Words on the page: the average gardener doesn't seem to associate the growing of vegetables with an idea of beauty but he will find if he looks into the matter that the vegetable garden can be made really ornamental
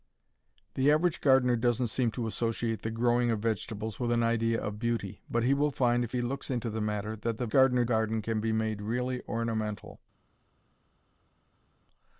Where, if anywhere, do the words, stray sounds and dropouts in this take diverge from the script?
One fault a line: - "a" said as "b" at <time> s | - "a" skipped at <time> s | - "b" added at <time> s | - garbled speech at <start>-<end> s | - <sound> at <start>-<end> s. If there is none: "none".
- "vegetable" said as "gardener" at 7.5 s